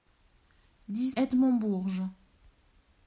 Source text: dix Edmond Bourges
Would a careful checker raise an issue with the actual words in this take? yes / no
no